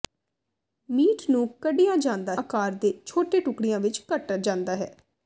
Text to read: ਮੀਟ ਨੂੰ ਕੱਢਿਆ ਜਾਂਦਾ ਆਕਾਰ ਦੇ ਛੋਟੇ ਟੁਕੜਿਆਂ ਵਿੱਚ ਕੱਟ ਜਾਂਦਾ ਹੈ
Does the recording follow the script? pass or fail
pass